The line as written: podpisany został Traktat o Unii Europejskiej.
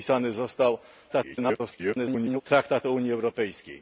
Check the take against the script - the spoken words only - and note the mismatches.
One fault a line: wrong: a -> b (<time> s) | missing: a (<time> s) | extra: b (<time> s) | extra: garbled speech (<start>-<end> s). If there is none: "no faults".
extra: garbled speech (1.1-2.4 s)